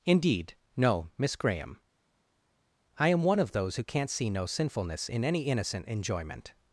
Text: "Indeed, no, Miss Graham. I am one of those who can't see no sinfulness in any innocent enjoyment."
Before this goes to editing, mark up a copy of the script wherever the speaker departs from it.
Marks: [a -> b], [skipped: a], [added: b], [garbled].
"Indeed, no, Miss Graham. I am one of those who can't see no sinfulness in any innocent enjoyment."